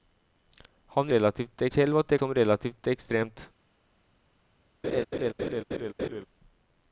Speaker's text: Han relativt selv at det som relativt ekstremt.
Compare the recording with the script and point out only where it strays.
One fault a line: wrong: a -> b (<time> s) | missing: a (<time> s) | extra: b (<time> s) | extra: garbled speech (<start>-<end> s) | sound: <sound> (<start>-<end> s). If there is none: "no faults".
sound: laugh (4.8-6.2 s)